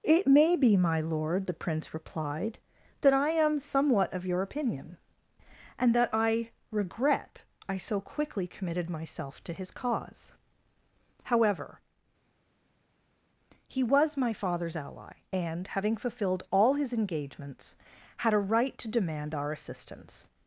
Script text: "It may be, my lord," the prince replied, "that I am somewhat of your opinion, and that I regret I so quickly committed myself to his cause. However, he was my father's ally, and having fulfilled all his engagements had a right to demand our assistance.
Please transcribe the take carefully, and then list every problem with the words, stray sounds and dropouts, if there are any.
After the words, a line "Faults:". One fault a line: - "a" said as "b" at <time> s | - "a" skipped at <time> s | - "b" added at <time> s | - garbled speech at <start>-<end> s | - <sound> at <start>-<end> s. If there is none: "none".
"It may be, my lord," the prince replied, "that I am somewhat of your opinion, and that I regret I so quickly committed myself to his cause. However, he was my father's ally, and having fulfilled all his engagements had a right to demand our assistance.
Faults:
none